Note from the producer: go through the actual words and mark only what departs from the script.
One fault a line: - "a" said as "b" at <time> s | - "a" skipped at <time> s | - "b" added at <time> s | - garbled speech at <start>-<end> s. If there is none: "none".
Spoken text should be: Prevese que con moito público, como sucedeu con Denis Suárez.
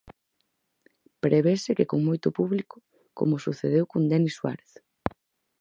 none